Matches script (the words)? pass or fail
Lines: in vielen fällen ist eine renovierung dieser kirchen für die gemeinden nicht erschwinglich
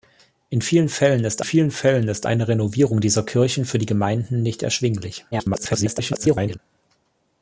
fail